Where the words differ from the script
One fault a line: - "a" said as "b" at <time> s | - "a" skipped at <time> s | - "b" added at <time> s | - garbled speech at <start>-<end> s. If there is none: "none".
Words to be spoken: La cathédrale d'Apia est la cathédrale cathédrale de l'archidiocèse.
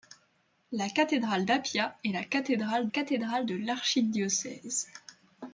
none